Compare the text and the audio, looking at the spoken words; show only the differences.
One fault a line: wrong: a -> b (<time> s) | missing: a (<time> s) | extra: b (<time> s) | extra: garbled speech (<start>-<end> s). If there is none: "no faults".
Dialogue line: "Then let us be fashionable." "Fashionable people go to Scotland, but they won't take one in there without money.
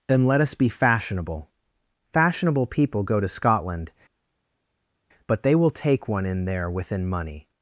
wrong: won't -> will (5.5 s)
wrong: without -> within (6.7 s)